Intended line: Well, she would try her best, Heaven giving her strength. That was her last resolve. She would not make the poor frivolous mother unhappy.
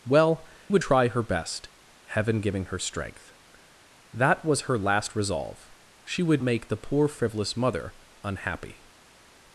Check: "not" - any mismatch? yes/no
yes